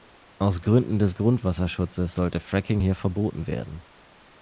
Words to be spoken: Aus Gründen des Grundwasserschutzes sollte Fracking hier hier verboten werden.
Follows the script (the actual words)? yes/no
no